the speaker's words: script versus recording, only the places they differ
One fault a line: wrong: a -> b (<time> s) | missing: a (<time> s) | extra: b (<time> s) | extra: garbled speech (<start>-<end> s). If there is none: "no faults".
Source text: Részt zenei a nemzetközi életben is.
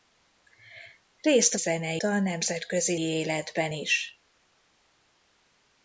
no faults